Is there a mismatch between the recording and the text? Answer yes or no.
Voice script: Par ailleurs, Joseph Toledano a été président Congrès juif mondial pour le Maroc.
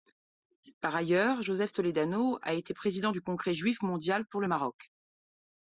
yes